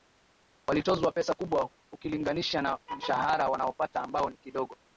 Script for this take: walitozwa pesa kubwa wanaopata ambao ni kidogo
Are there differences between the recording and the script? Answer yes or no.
yes